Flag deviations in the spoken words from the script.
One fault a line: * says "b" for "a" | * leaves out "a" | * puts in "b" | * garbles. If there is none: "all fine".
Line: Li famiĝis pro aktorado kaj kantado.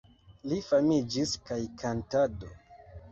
* leaves out "pro aktorado"